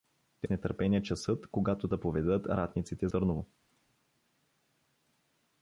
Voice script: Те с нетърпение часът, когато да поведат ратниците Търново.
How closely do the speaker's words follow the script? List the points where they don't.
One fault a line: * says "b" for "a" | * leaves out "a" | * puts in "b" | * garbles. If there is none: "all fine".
all fine